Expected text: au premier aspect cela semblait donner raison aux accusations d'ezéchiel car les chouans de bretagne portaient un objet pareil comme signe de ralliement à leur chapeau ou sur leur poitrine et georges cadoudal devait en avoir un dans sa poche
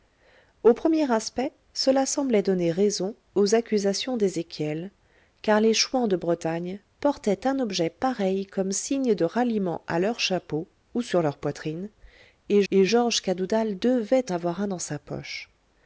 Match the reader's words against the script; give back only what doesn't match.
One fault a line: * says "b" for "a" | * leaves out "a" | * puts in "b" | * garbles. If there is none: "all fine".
* puts in "et"
* leaves out "en"